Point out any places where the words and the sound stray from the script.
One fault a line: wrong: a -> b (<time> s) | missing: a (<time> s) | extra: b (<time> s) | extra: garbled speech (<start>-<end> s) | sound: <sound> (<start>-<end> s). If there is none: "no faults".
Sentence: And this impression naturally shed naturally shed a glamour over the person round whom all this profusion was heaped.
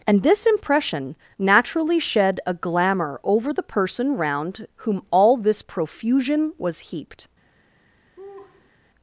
missing: naturally shed (2.4 s)
sound: laugh (8.2-8.7 s)